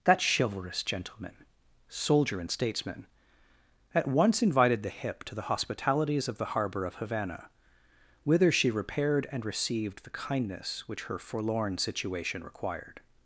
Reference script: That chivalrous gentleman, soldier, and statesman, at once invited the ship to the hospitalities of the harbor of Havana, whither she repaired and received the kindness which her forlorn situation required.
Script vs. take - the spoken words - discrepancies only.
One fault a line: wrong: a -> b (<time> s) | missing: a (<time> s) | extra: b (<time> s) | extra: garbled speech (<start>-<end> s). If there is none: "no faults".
wrong: ship -> hip (4.9 s)